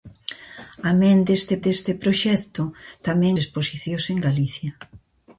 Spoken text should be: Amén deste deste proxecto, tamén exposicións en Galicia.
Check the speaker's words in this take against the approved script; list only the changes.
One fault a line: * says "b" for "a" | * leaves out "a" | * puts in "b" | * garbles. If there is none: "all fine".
all fine